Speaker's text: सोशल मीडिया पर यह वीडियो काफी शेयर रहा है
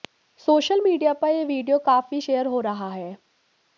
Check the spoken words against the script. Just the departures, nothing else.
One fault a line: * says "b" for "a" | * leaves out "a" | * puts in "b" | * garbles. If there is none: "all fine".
* puts in "हो"